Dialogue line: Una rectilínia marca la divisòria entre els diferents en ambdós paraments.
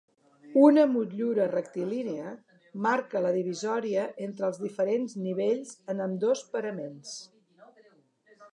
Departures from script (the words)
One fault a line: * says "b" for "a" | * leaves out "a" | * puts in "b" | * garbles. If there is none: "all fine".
* puts in "motllura"
* puts in "nivells"